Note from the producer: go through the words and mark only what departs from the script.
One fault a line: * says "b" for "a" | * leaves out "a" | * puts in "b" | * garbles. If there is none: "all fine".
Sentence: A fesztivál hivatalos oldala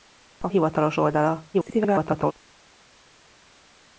* leaves out "fesztivál"
* garbles